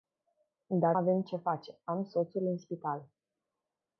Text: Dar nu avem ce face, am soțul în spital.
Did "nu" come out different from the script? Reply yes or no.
yes